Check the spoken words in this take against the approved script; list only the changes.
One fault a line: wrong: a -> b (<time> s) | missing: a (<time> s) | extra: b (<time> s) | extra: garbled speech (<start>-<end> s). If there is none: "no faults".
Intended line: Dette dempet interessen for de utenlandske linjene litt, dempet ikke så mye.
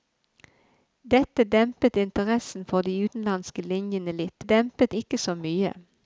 no faults